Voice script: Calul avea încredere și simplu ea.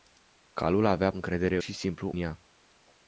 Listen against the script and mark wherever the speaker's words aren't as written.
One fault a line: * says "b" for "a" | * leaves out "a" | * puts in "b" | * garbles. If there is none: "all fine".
all fine